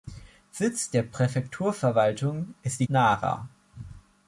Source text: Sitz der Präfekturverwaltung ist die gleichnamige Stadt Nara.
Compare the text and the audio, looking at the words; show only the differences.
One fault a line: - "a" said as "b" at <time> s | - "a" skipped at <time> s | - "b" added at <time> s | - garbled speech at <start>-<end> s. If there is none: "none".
- "gleichnamige Stadt" skipped at 2.9 s